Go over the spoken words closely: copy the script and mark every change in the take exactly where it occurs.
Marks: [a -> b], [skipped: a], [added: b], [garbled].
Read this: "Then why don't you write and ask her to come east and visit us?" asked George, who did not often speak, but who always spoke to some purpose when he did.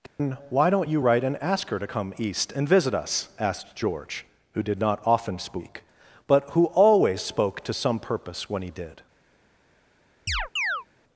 "Then why don't you write and ask her to come east and visit us?" asked George, who did not often speak, but who always spoke to some purpose when he did.